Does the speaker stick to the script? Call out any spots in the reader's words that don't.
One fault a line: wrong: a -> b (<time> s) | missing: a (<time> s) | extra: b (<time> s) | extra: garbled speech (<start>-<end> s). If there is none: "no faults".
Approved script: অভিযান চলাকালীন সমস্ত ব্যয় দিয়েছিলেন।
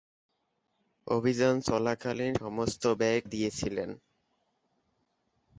no faults